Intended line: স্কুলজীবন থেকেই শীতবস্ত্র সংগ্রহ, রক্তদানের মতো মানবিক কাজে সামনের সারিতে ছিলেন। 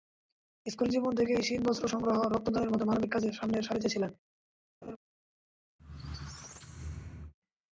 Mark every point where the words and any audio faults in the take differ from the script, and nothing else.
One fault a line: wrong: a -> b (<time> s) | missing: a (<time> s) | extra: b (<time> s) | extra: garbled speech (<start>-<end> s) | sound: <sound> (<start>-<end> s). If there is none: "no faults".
sound: laugh (4.8-5.0 s)
sound: squeak (5.8-7.3 s)